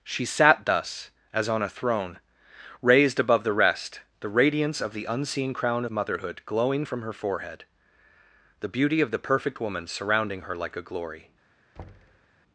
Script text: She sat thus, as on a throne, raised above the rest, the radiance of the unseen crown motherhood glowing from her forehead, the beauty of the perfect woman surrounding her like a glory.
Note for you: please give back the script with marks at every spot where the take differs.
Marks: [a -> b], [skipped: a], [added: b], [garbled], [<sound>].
She sat thus, as on a throne, raised above the rest, the radiance of the unseen crown motherhood glowing from her forehead, the beauty of the perfect woman surrounding her like a glory. [thud]